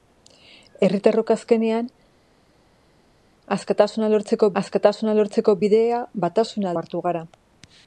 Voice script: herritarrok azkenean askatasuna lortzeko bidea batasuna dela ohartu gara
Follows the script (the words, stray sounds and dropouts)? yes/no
no